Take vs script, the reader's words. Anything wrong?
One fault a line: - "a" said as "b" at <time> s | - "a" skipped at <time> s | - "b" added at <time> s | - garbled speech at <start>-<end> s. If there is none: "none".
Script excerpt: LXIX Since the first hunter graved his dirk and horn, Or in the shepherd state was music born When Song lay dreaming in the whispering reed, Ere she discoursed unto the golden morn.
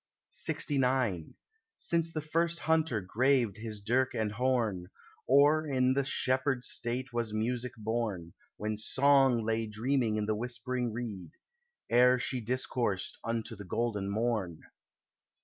none